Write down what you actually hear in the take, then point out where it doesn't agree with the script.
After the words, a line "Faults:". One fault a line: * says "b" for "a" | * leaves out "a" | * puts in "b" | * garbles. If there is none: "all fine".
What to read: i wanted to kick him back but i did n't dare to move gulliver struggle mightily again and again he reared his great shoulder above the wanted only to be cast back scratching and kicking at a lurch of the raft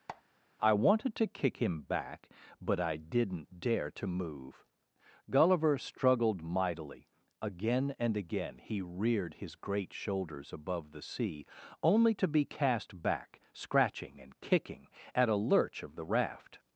i wanted to kick him back but i did n't dare to move gulliver struggled mightily again and again he reared his great shoulders above the sea only to be cast back scratching and kicking at a lurch of the raft
Faults:
* says "struggled" for "struggle"
* says "shoulders" for "shoulder"
* says "sea" for "wanted"